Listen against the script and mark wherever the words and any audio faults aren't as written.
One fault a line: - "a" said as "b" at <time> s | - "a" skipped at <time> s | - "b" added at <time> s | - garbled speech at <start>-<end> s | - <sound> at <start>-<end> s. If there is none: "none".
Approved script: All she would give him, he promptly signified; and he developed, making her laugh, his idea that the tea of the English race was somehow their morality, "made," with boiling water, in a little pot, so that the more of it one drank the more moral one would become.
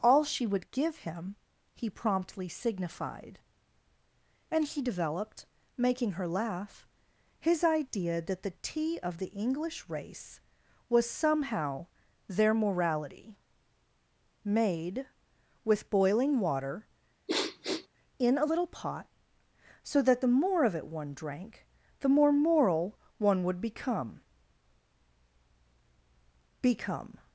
- sniff at 17.3-17.9 s
- "become" added at 26.6 s